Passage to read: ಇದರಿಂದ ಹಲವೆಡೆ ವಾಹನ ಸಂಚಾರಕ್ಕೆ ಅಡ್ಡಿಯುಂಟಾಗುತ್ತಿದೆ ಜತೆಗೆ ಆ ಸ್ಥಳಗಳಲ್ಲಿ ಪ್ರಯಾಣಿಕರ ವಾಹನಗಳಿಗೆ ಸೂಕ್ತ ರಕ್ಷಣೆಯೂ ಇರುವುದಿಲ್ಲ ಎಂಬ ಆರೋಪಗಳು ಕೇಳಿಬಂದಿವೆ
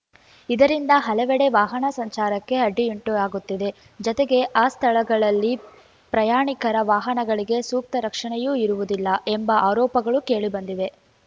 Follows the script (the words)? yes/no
yes